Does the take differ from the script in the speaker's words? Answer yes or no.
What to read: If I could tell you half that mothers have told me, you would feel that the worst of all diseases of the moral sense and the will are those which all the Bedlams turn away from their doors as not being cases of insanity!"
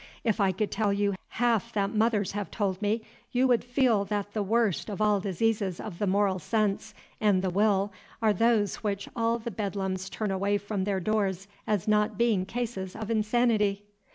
no